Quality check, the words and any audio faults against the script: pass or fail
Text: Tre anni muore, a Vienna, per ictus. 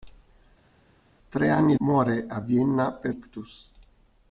pass